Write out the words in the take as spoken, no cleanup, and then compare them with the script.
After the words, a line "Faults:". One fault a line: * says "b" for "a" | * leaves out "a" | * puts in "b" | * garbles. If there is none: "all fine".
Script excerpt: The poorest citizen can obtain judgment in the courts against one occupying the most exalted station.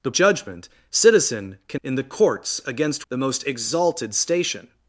The judgment citizen can in the courts against the most exalted station.
Faults:
* says "judgment" for "poorest"
* leaves out "obtain judgment"
* leaves out "one occupying"